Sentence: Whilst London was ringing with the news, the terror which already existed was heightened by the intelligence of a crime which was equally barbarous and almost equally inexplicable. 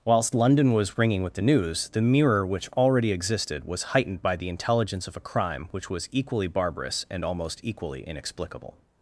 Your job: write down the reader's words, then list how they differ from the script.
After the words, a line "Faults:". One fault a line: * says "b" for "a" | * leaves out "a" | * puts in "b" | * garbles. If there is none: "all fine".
Whilst London was ringing with the news, the mirror which already existed was heightened by the intelligence of a crime which was equally barbarous and almost equally inexplicable.
Faults:
* says "mirror" for "terror"